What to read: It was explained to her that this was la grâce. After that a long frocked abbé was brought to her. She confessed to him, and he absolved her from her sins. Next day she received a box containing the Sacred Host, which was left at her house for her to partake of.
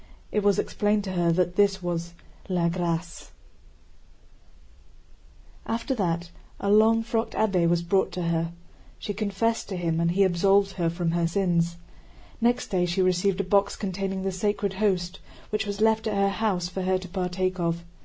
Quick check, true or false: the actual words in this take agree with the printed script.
true